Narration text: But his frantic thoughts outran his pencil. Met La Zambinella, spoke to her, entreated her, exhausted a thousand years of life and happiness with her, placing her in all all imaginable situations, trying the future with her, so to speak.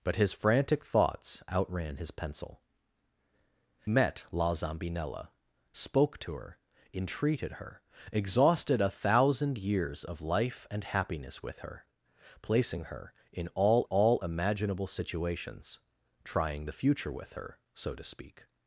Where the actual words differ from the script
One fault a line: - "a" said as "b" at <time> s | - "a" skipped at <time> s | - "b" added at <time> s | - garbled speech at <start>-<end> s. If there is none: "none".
none